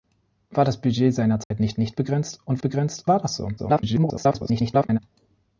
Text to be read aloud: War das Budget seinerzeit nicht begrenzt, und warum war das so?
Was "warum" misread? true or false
true